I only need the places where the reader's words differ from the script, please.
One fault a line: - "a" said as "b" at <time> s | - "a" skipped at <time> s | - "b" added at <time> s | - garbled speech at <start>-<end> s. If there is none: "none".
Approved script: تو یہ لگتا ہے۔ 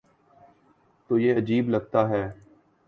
- "عجیب" added at 1.4 s